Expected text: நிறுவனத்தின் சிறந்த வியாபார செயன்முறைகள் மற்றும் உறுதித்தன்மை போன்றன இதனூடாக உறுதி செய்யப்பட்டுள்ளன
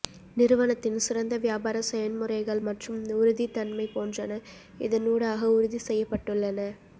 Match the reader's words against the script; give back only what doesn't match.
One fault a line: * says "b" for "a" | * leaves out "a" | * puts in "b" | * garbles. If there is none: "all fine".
all fine